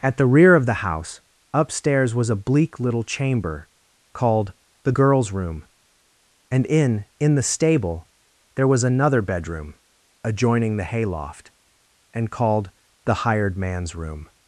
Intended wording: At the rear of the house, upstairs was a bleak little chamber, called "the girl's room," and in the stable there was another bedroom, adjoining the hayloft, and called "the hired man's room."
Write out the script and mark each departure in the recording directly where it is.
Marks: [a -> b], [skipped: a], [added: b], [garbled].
At the rear of the house, upstairs was a bleak little chamber, called "the girl's room," and in [added: in] the stable there was another bedroom, adjoining the hayloft, and called "the hired man's room."